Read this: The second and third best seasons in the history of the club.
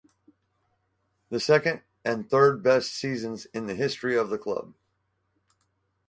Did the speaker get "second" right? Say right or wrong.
right